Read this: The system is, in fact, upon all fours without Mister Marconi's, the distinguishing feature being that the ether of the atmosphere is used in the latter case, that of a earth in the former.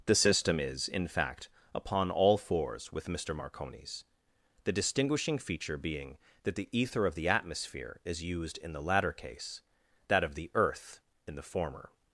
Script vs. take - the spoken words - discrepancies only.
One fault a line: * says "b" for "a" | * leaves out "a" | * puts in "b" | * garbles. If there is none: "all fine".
* says "with" for "without"
* says "the" for "a"